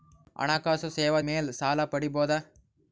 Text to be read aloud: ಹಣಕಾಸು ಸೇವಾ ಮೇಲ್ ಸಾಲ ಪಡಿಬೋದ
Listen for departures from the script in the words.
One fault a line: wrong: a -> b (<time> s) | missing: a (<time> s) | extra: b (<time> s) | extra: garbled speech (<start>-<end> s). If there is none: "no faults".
no faults